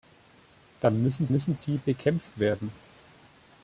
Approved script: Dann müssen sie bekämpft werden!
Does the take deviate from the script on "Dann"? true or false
false